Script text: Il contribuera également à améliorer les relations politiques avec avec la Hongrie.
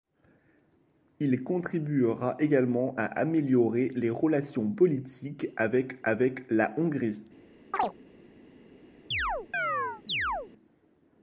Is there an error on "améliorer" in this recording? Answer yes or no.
no